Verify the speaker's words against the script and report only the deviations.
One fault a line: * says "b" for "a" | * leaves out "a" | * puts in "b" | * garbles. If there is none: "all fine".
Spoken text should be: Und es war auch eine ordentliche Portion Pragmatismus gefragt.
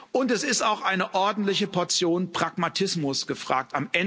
* says "ist" for "war"